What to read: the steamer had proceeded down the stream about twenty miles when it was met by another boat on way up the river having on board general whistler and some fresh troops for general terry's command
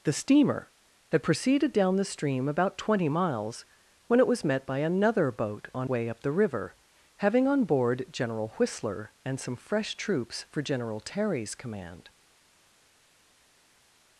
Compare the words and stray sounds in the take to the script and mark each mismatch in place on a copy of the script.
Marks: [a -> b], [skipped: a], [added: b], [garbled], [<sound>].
the steamer had proceeded down the stream about twenty miles when it was met by another boat on way up the river having on board general whistler and some fresh troops for general terry's command